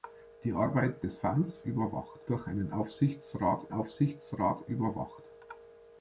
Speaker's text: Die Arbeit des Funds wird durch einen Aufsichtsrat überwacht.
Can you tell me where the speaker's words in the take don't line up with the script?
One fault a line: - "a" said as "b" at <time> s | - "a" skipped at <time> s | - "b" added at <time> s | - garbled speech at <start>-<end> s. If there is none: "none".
- "wird" said as "überwacht" at 1.7 s
- "Aufsichtsrat" added at 3.7 s